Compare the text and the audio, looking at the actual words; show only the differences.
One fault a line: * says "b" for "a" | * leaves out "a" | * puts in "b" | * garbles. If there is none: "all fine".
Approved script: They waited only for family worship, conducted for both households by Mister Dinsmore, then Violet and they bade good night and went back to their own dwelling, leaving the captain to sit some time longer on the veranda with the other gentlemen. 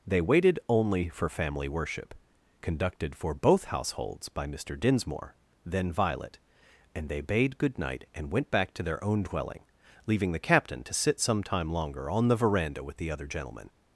all fine